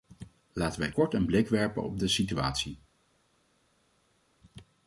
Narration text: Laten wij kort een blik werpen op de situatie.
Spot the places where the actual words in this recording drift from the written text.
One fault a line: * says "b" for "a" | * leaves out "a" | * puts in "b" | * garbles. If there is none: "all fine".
all fine